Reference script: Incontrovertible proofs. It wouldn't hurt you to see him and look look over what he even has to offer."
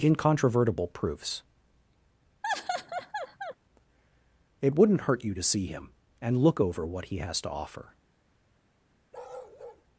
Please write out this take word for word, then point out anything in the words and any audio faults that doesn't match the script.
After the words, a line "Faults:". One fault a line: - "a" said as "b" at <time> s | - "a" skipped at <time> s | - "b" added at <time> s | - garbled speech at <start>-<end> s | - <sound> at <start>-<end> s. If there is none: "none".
Incontrovertible proofs. It wouldn't hurt you to see him and look over what he has to offer."
Faults:
- laugh at 2.4-3.6 s
- "look" skipped at 6.6 s
- "even" skipped at 7.2 s
- bark at 9.1-9.8 s